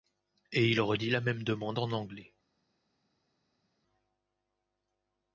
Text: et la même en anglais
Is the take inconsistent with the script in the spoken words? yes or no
yes